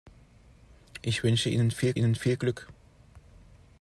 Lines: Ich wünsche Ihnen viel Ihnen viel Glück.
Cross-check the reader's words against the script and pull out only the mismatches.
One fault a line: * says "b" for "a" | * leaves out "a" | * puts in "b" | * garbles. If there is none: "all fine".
all fine